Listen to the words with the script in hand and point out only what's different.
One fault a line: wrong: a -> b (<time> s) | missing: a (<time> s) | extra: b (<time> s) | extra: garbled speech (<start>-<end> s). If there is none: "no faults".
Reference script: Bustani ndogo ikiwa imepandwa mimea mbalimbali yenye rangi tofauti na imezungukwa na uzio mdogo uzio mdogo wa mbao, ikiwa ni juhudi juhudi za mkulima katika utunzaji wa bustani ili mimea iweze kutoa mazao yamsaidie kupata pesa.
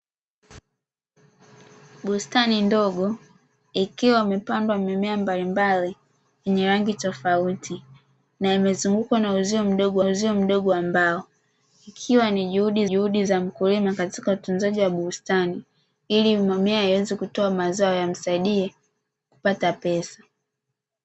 no faults